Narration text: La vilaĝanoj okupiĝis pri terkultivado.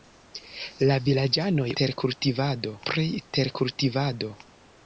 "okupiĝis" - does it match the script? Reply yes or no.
no